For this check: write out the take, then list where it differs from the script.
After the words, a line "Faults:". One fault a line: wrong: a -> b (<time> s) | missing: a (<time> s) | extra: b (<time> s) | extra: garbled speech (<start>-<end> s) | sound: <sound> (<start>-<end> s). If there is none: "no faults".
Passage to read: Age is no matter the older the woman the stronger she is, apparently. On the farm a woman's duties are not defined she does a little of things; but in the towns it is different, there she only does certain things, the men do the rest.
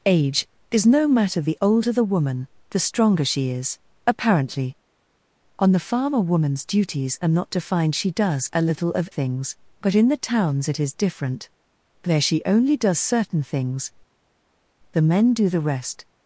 Age is no matter the older the woman the stronger she is, apparently. On the farm a woman's duties are not defined she does a little of things; but in the towns it is different, there she only does certain things, the men do the rest.
Faults:
no faults